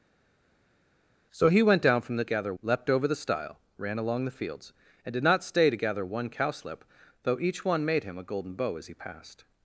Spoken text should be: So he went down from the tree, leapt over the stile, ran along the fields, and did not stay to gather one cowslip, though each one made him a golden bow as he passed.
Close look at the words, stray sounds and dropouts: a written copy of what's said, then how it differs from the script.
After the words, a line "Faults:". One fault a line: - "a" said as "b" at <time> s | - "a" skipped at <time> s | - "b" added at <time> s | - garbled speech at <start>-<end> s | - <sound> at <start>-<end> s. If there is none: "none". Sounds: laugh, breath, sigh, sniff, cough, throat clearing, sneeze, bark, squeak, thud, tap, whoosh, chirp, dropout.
So he went down from the gather, leapt over the stile, ran along the fields, and did not stay to gather one cowslip, though each one made him a golden bow as he passed.
Faults:
- "tree" said as "gather" at 2.2 s